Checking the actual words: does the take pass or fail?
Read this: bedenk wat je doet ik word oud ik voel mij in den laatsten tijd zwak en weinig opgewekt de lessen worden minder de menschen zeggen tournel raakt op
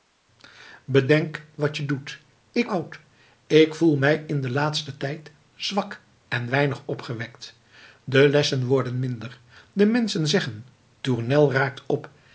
fail